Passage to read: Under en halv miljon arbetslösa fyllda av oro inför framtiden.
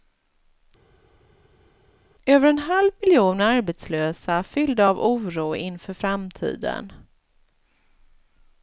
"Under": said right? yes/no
no